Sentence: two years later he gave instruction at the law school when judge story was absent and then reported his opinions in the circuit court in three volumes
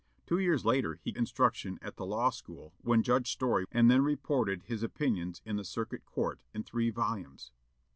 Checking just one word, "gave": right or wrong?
wrong